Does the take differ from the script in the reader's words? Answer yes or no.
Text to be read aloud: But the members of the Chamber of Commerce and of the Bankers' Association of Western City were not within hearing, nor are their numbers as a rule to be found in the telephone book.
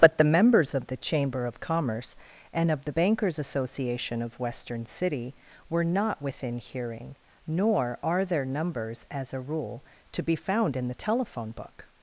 no